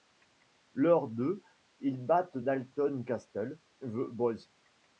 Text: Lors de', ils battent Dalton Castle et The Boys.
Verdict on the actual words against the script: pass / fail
fail